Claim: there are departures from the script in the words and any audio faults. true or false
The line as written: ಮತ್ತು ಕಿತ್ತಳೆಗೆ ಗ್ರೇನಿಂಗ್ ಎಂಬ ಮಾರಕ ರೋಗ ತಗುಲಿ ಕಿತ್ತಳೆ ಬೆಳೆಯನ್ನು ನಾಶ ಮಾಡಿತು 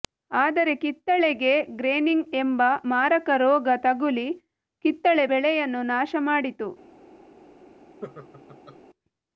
true